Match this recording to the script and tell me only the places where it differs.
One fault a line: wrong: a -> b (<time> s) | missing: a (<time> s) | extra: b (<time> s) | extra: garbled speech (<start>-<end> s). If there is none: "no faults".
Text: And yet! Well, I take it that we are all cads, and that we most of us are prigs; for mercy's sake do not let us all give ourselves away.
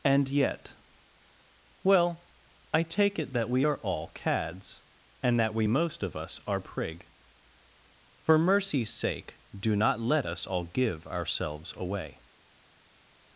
wrong: prigs -> prig (6.6 s)